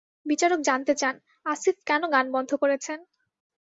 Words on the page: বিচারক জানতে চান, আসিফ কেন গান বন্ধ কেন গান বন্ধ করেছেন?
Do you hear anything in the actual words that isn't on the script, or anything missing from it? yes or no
yes